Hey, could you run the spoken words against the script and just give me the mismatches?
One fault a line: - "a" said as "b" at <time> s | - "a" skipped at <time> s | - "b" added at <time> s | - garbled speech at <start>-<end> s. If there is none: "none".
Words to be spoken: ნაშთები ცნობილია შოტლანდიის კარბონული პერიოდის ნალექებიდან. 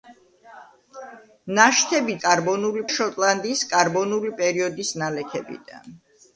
- "ცნობილია" said as "კარბონული" at 2.2 s